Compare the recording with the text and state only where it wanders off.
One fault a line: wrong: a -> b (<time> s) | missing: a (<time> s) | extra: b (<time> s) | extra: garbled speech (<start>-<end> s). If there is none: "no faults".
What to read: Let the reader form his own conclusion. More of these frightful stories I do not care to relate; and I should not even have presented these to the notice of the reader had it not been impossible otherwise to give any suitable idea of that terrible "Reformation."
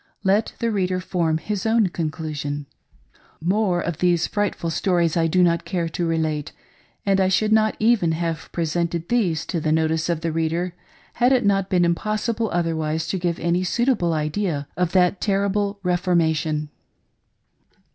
no faults